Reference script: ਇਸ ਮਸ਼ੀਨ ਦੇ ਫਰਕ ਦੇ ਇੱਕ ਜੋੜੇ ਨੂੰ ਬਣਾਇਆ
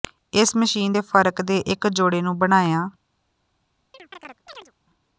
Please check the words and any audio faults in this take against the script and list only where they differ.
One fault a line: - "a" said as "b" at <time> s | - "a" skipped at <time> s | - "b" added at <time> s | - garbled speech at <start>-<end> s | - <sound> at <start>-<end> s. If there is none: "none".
- chirp at 3.9-4.7 s